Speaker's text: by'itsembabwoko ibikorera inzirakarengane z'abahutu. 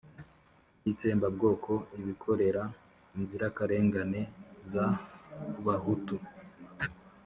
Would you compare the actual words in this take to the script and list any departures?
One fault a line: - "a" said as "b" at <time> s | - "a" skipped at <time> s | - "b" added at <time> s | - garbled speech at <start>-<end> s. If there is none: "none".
none